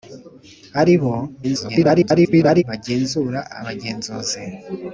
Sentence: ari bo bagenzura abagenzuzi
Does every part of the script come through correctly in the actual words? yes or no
no